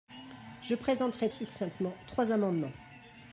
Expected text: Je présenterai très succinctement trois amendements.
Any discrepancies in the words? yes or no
yes